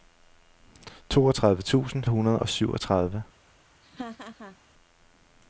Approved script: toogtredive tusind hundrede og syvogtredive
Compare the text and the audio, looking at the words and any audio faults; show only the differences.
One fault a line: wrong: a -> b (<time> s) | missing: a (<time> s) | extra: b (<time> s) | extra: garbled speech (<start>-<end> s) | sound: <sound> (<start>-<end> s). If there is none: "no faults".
sound: laugh (3.8-4.6 s)